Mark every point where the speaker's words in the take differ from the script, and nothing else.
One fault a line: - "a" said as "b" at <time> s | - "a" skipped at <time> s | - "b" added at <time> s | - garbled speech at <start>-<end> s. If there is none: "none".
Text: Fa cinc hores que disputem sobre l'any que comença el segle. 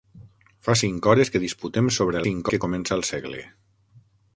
- "l'any" said as "cinc" at 2.2 s